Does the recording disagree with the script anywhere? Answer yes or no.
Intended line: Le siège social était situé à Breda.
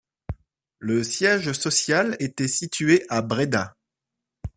no